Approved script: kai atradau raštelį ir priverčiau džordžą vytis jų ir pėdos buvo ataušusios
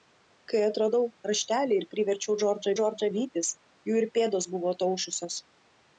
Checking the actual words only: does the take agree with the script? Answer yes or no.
no